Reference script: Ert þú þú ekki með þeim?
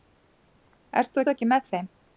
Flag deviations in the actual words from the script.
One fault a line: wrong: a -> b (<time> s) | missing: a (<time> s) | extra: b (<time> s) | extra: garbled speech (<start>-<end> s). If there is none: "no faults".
no faults